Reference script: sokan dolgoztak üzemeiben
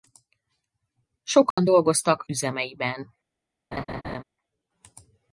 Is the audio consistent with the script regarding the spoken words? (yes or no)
yes